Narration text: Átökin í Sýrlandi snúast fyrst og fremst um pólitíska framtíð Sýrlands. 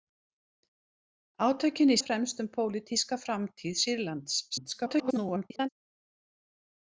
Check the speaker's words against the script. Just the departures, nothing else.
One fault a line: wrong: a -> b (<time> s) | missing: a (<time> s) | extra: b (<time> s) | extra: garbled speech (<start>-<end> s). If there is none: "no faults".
missing: Sýrlandi snúast fyrst (2.0 s)
extra: garbled speech (4.5-5.7 s)